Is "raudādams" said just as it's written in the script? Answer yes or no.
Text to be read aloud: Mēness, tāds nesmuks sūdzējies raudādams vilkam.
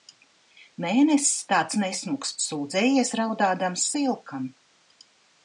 yes